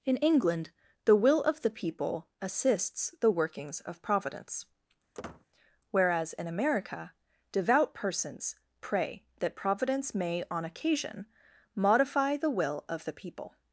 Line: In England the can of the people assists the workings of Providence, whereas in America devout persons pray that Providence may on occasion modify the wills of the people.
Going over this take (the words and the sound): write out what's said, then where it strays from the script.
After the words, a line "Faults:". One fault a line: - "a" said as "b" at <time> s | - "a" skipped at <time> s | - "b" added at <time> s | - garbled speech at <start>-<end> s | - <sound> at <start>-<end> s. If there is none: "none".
In England the will of the people assists the workings of Providence, whereas in America devout persons pray that Providence may on occasion modify the will of the people.
Faults:
- "can" said as "will" at 1.1 s
- squeak at 5.1-5.5 s
- "wills" said as "will" at 12.5 s